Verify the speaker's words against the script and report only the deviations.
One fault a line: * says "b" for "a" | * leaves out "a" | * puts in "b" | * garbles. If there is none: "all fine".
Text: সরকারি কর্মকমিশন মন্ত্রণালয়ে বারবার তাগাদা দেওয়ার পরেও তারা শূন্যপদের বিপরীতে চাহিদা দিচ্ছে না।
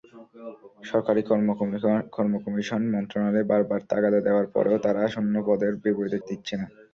* leaves out "চাহিদা"